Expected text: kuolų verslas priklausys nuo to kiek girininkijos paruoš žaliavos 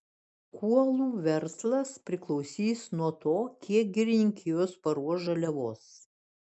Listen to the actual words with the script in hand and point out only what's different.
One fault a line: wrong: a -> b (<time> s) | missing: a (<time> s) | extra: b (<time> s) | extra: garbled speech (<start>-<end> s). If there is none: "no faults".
no faults